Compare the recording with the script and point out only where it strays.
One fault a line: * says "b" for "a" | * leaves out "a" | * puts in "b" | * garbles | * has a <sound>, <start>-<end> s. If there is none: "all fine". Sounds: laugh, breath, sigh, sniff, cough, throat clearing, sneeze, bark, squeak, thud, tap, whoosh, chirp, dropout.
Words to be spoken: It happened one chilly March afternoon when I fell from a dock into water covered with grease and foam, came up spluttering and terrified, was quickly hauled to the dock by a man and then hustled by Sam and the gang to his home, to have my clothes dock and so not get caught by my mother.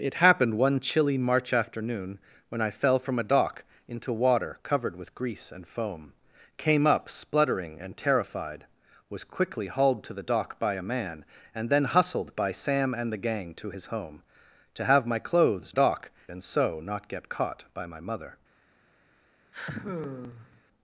* has a sigh, 19.5-20.6 s